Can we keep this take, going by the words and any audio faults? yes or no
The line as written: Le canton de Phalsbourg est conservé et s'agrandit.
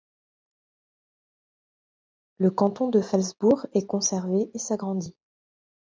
yes